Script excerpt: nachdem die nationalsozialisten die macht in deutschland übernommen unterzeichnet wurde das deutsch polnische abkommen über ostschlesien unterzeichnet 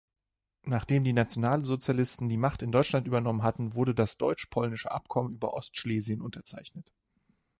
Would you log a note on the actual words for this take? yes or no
yes